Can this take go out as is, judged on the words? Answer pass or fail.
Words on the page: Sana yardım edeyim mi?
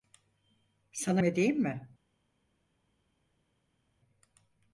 fail